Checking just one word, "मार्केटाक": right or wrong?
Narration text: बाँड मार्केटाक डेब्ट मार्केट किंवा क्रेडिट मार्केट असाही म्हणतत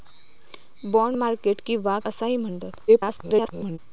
wrong